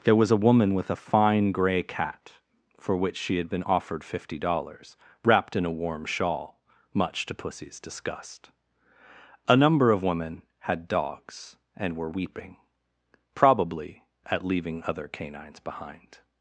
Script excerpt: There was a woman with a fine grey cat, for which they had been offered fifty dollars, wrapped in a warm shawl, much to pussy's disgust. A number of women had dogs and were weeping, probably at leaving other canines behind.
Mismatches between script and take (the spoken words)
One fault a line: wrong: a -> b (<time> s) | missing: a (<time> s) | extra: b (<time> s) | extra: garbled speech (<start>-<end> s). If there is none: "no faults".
wrong: they -> she (3.1 s)